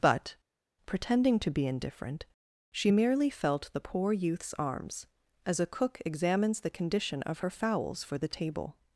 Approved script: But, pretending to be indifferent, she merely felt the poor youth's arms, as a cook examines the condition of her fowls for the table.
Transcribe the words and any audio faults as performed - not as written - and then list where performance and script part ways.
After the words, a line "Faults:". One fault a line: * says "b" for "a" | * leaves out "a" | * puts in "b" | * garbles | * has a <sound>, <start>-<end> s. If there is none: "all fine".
But, pretending to be indifferent, she merely felt the poor youth's arms, as a cook examines the condition of her fowls for the table.
Faults:
all fine